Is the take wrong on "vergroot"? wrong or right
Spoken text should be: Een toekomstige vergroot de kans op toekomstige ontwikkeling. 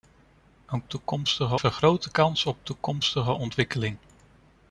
right